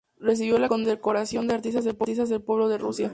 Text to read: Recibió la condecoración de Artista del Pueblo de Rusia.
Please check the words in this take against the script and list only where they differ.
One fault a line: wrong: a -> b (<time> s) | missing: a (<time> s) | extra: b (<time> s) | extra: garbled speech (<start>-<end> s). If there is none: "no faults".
no faults